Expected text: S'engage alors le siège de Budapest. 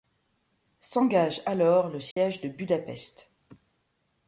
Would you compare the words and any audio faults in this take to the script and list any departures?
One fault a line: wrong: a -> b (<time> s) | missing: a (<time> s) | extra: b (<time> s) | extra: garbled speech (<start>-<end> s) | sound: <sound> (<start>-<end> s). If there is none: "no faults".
sound: dropout (2.1-2.2 s)